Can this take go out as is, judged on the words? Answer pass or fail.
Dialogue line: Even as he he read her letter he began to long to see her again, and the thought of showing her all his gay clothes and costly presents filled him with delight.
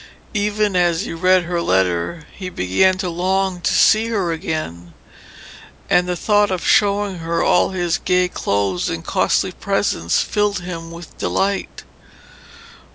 fail